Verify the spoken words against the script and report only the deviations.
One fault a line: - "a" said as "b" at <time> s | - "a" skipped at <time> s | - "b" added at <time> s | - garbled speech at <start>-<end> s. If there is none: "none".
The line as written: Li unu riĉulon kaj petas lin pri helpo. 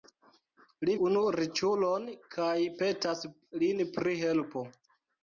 none